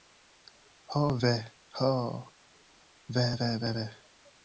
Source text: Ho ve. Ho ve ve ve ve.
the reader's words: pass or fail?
pass